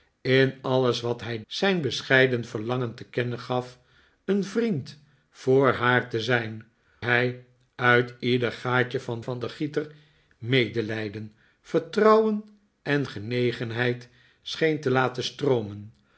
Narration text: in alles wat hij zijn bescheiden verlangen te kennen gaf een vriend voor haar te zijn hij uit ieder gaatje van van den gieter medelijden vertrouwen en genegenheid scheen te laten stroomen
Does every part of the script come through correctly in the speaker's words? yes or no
yes